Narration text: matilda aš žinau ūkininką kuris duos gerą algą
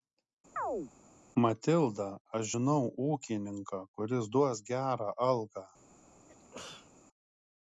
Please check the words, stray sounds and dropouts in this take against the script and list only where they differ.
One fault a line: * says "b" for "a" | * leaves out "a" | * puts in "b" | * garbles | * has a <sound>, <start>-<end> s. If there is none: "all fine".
* has a chirp, 0.6-0.9 s
* has a sneeze, 6.3-6.9 s